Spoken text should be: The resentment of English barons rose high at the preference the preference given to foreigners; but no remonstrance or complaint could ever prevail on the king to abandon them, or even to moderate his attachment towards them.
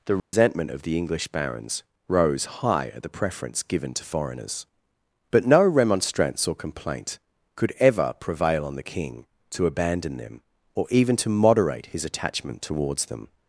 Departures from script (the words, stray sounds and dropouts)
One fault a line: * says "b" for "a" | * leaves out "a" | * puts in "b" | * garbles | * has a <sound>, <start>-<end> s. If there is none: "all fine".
* has a dropout, 0.2-0.3 s
* puts in "the"
* leaves out "the preference"